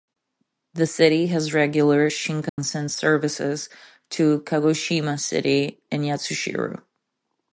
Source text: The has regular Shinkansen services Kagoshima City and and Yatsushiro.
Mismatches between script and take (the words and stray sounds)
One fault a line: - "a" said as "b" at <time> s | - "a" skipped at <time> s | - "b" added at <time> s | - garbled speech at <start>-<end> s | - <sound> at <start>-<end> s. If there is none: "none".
- "city" added at 0.8 s
- dropout at 2.5-2.6 s
- "to" added at 4.1 s
- "and" skipped at 6.0 s